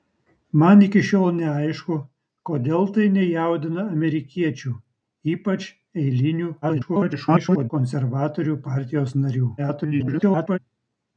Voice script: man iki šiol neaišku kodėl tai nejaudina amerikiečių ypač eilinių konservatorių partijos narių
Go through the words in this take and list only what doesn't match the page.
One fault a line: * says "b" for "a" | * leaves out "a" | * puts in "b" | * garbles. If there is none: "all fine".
* garbles
* garbles